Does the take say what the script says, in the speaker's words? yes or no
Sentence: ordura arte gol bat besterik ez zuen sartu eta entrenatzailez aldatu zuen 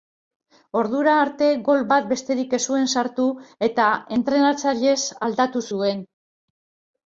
yes